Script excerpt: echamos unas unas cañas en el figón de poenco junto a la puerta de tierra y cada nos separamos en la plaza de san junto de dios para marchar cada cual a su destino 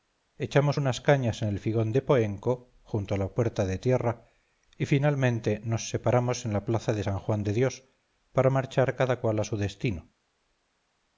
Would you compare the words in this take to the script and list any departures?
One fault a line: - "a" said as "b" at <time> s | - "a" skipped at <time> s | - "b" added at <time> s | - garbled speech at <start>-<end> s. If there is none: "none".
- "unas" skipped at 1.0 s
- "cada" said as "finalmente" at 4.9 s
- "junto" said as "juan" at 7.2 s